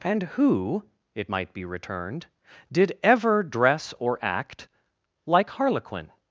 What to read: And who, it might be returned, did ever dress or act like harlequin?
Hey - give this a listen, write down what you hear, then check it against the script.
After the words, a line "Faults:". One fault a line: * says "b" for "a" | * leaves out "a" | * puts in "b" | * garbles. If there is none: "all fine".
And who, it might be returned, did ever dress or act like harlequin?
Faults:
all fine